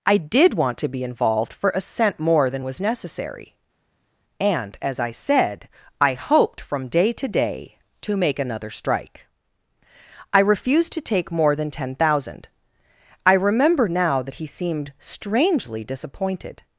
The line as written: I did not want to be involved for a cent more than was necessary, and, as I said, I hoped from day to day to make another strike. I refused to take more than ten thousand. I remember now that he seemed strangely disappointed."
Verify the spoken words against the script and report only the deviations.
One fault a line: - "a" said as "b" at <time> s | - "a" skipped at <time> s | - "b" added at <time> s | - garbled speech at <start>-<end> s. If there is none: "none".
- "not" skipped at 0.5 s